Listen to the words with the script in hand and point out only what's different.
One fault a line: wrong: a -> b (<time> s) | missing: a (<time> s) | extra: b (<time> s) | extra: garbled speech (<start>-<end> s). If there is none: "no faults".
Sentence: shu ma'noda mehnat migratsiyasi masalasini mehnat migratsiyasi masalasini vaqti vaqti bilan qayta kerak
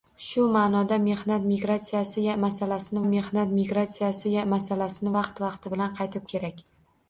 no faults